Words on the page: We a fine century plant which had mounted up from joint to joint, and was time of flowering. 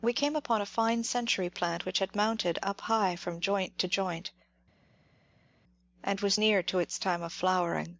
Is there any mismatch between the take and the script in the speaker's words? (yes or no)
yes